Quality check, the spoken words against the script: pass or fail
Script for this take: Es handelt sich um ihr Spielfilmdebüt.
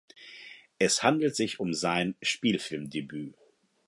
fail